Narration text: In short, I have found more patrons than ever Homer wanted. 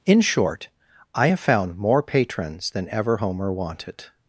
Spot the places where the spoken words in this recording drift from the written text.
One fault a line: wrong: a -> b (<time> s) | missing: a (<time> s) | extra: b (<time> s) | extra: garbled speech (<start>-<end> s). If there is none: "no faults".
no faults